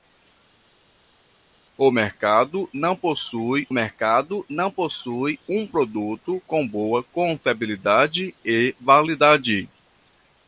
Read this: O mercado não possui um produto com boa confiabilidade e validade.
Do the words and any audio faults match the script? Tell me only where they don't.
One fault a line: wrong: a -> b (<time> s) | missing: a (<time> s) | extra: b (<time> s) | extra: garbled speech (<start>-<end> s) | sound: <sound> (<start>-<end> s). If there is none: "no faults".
extra: mercado não possui (3.7 s)